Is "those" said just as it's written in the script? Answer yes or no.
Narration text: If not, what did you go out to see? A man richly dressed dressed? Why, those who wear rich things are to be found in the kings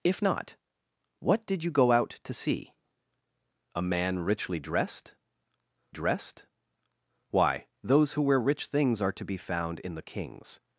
yes